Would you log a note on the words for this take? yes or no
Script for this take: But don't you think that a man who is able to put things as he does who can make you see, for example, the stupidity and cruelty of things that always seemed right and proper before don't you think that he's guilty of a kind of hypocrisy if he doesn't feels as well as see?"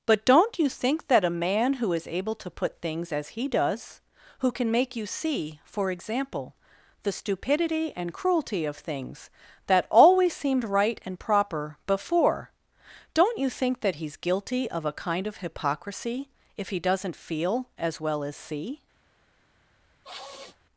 yes